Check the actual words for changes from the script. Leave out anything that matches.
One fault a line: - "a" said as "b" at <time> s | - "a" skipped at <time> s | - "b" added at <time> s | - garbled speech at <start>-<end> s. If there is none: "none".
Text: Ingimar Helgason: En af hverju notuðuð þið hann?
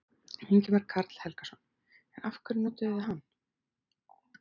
- "Karl" added at 0.9 s